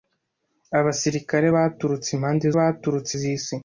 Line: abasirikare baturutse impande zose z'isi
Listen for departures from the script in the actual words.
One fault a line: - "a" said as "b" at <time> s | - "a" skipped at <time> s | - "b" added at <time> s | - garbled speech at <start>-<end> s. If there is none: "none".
- "zose" said as "baturutse" at 2.6 s